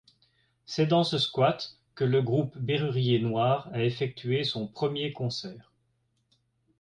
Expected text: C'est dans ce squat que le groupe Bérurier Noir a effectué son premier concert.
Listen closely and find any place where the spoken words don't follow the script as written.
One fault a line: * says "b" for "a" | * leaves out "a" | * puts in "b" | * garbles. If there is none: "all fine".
all fine